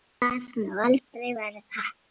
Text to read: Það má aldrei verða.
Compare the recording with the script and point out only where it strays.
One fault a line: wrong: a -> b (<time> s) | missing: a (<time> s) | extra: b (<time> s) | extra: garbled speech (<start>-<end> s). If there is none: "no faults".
no faults